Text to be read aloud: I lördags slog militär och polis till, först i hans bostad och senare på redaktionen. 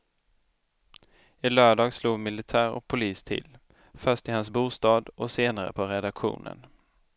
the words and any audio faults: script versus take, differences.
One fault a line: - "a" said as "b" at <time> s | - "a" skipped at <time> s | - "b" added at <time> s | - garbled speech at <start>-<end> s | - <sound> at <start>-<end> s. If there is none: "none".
none